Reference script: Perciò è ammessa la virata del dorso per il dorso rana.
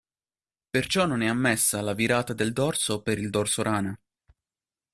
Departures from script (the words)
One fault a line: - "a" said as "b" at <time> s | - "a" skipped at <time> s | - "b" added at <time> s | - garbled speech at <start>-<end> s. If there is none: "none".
- "non" added at 1.1 s